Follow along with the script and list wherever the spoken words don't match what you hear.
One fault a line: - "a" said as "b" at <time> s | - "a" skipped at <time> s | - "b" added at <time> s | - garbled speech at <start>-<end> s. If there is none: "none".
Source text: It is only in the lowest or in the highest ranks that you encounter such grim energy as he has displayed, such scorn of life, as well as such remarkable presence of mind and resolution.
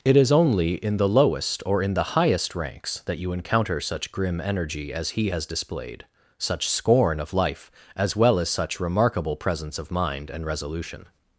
none